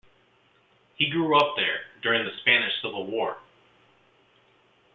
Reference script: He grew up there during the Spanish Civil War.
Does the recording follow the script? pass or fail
pass